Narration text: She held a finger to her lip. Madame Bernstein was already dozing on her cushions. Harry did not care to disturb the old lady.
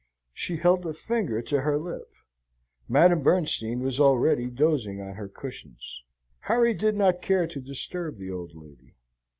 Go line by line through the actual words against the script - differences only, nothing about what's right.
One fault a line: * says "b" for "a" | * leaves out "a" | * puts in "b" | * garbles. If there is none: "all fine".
all fine